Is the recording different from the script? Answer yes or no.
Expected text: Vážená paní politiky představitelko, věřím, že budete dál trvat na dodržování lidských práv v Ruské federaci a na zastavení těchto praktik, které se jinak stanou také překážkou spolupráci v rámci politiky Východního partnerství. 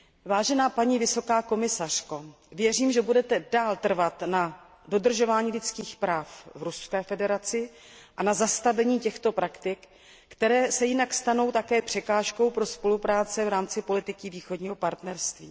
yes